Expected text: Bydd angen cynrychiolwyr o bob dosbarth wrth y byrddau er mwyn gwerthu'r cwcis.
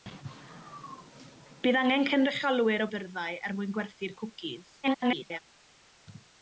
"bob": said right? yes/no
no